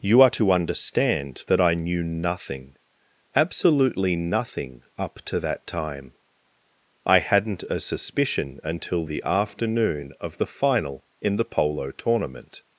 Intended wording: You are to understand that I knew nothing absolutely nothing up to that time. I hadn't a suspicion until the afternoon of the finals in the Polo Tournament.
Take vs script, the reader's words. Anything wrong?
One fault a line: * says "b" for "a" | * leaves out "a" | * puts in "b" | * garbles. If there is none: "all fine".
* says "final" for "finals"